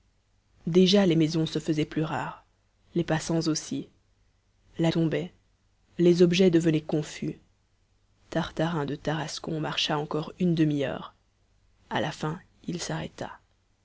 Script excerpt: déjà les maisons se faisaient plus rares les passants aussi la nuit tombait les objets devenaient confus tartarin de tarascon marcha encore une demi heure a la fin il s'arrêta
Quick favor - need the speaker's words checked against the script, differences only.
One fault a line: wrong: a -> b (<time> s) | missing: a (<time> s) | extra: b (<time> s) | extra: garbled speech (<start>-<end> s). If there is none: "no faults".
missing: nuit (4.9 s)